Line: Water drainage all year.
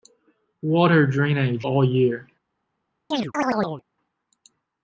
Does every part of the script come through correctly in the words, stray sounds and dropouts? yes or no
no